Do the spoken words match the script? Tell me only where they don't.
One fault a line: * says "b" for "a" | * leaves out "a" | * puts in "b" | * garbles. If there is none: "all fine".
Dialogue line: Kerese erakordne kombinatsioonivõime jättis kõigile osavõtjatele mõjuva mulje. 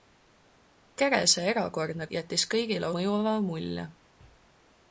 * leaves out "kombinatsioonivõime"
* leaves out "osavõtjatele"